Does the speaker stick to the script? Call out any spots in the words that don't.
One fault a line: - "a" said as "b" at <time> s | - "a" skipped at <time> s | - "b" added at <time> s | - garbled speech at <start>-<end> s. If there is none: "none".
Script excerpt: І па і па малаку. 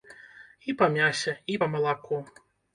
- "мясе" added at 0.9 s